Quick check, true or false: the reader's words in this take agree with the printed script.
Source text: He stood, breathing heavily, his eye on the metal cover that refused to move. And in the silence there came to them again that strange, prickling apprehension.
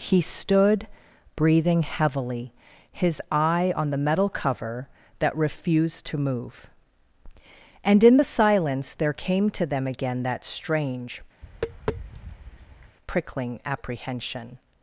true